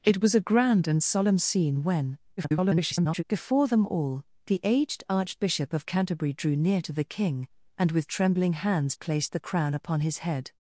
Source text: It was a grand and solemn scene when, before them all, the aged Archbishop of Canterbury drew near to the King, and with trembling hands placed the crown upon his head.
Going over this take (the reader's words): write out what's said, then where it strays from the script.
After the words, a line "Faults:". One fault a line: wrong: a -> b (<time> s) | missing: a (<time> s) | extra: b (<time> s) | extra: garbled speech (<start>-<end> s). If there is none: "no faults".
It was a grand and solemn scene when, [garbled] before them all, the aged Archbishop of Canterbury drew near to the King, and with trembling hands placed the crown upon his head.
Faults:
extra: garbled speech (2.4-3.2 s)